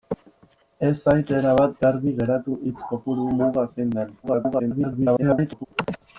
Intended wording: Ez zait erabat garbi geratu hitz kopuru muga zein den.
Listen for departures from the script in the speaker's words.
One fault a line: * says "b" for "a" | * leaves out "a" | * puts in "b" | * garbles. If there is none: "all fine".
* garbles